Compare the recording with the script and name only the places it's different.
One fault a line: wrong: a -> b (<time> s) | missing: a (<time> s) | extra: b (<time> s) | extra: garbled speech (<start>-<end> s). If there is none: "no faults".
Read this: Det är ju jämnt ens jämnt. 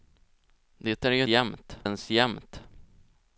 no faults